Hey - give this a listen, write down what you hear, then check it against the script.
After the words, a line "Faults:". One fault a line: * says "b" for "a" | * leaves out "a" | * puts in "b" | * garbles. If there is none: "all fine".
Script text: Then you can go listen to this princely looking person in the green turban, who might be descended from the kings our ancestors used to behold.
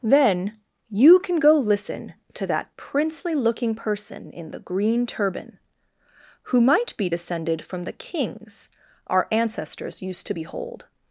Then you can go listen to that princely looking person in the green turban, who might be descended from the kings our ancestors used to behold.
Faults:
* says "that" for "this"